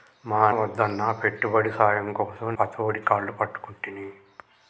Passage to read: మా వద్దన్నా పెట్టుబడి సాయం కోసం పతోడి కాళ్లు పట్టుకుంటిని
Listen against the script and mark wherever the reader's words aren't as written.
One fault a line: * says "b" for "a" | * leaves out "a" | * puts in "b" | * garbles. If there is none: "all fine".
all fine